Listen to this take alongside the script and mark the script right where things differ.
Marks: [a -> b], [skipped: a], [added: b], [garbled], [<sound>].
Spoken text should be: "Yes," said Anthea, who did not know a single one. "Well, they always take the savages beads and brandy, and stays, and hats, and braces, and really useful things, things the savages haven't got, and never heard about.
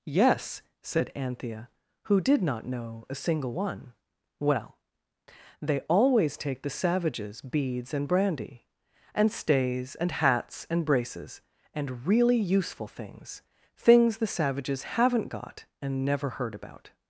"Yes," said Anthea, who did not know a single one. "Well, they always take the savages beads and brandy, and stays, and hats, and braces, and really useful things, things the savages haven't got, and never heard about.